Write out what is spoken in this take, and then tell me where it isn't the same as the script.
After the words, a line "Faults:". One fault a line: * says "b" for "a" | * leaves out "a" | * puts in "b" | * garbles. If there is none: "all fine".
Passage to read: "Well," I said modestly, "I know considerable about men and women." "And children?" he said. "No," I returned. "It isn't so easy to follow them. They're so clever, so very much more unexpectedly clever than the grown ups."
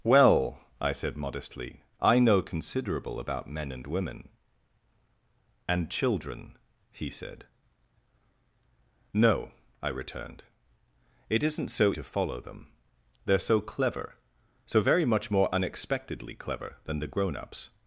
"Well," I said modestly, "I know considerable about men and women." "And children?" he said. "No," I returned. "It isn't so to follow them. They're so clever, so very much more unexpectedly clever than the grown ups."
Faults:
* leaves out "easy"